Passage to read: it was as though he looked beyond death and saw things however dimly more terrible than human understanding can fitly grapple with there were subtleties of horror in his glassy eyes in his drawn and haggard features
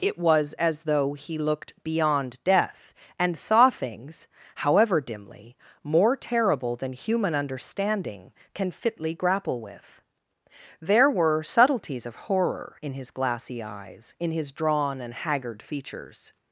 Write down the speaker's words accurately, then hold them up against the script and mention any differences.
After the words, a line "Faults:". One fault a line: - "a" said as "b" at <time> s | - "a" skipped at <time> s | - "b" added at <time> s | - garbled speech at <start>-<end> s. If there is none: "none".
it was as though he looked beyond death and saw things however dimly more terrible than human understanding can fitly grapple with there were subtleties of horror in his glassy eyes in his drawn and haggard features
Faults:
none